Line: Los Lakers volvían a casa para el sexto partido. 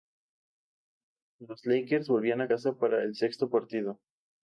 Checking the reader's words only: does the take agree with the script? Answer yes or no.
yes